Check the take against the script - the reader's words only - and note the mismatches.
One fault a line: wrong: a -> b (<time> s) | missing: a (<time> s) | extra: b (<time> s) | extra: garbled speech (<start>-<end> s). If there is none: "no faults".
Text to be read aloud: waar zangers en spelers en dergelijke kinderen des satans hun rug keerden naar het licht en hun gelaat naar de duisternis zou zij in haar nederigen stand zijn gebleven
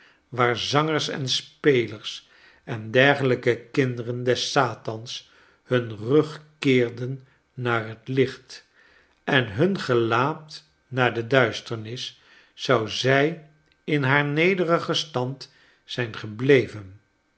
no faults